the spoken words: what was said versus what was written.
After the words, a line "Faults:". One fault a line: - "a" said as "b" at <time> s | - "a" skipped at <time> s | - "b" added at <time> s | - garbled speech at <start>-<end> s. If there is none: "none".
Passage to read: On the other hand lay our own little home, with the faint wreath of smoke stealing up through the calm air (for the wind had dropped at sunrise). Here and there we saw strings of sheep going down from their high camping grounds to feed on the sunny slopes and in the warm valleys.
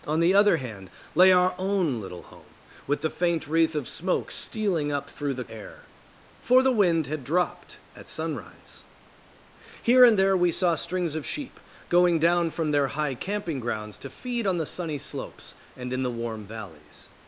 On the other hand lay our own little home, with the faint wreath of smoke stealing up through the air (for the wind had dropped at sunrise). Here and there we saw strings of sheep going down from their high camping grounds to feed on the sunny slopes and in the warm valleys.
Faults:
- "calm" skipped at 5.4 s